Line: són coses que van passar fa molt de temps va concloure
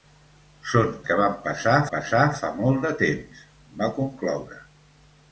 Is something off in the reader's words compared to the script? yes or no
yes